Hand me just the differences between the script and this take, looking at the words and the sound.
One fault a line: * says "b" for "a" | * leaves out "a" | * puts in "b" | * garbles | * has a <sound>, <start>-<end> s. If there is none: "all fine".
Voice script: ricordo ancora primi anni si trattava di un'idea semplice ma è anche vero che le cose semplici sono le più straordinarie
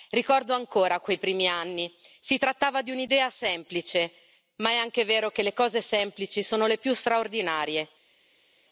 * puts in "quei"